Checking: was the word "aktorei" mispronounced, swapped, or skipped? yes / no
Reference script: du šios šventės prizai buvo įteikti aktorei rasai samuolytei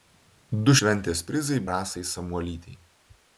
yes